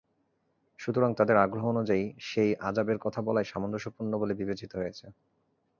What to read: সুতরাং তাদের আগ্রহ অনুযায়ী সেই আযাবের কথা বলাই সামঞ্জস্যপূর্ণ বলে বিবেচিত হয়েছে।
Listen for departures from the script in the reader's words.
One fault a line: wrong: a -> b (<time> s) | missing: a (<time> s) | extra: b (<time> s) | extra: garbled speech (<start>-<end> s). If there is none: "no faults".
no faults